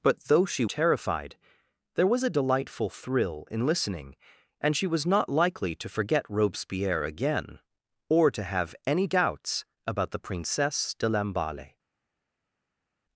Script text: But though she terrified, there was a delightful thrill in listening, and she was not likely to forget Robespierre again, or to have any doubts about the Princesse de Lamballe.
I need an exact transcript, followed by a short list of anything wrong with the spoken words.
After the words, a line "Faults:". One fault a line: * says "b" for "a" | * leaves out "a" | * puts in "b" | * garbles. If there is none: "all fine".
But though she terrified, there was a delightful thrill in listening, and she was not likely to forget Robespierre again, or to have any doubts about the Princesse de Lamballe.
Faults:
all fine